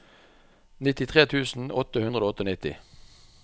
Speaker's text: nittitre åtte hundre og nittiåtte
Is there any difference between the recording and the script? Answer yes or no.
yes